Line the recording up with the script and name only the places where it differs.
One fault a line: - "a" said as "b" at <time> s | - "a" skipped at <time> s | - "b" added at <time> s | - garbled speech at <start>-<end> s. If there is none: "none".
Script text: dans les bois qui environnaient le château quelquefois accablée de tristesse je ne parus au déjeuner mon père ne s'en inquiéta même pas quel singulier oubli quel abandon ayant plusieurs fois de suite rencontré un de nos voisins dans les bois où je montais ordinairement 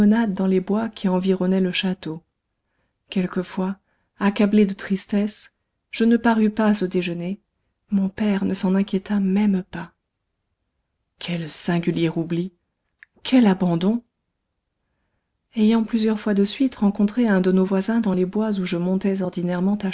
- "pas" added at 6.5 s